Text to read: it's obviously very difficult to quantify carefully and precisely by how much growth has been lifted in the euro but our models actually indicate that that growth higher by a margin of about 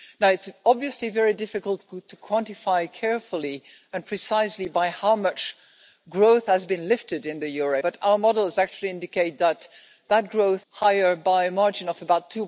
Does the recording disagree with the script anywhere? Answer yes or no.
no